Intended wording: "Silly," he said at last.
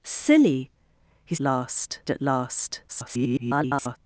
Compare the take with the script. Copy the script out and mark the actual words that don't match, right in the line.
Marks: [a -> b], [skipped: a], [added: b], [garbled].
"Silly," he [said -> last] at last. [garbled]